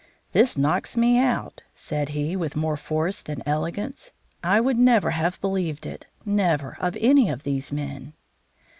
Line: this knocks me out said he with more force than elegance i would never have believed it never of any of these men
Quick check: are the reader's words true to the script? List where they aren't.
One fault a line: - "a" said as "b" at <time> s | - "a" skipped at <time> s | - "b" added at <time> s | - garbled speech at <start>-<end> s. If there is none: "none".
none